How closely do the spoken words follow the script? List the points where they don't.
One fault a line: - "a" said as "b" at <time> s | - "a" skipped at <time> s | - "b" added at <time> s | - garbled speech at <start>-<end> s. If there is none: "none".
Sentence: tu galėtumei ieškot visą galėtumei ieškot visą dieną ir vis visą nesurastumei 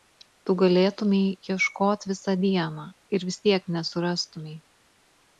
- "galėtumei ieškot visą" skipped at 2.4 s
- "visą" said as "tiek" at 3.5 s